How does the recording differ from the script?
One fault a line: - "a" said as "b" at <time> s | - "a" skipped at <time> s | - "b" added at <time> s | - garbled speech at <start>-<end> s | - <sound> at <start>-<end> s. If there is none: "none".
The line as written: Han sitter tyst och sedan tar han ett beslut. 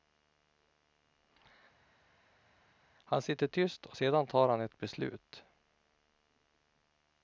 none